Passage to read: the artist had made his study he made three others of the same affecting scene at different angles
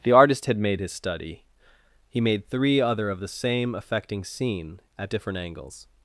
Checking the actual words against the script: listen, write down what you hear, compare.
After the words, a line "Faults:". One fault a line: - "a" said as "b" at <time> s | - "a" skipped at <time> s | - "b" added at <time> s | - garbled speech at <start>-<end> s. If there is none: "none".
the artist had made his study he made three other of the same affecting scene at different angles
Faults:
- "others" said as "other" at 2.8 s